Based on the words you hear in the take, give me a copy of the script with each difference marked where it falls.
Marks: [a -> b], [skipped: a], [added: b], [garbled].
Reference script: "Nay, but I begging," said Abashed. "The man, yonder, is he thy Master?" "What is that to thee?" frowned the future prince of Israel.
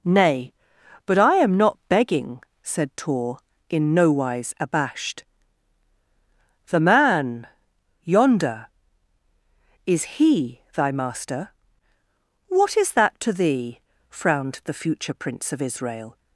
"Nay, but I [added: am not] begging," said [added: Tor in nowise] Abashed. "The man, yonder, is he thy Master?" "What is that to thee?" frowned the future prince of Israel.